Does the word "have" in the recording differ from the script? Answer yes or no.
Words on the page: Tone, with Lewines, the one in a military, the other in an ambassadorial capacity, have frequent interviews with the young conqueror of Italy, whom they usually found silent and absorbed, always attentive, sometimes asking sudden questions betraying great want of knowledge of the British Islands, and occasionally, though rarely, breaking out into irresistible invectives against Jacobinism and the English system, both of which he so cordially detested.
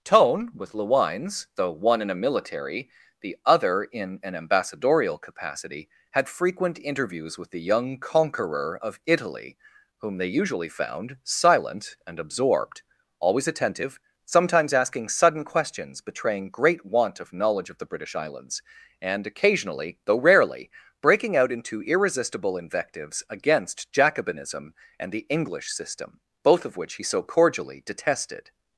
yes